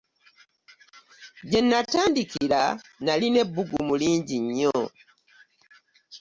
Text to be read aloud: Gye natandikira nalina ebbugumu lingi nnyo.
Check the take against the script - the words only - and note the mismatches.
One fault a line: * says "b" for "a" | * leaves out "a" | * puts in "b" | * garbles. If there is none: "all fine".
all fine